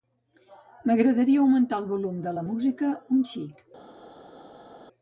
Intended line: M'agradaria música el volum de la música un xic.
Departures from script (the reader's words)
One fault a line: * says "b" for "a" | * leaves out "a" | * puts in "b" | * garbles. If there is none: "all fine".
* says "augmentar" for "música"